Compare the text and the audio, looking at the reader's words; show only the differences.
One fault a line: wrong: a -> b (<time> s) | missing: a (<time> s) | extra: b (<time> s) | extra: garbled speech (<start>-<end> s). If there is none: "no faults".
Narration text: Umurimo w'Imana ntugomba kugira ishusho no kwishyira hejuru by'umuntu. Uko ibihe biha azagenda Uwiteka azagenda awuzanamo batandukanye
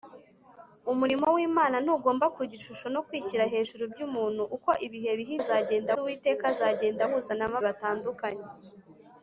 no faults